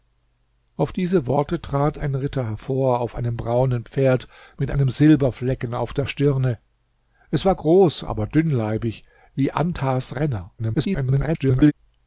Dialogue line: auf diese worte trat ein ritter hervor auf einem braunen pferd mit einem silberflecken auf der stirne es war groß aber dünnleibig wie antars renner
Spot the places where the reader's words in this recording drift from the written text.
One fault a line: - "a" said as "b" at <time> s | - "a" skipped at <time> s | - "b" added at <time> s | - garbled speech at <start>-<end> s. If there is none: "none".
- garbled speech at 10.6-11.7 s